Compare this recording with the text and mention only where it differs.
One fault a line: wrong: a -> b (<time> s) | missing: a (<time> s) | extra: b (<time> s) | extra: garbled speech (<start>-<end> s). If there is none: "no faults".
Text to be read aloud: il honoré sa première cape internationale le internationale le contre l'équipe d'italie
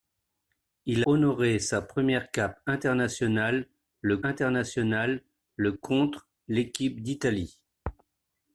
no faults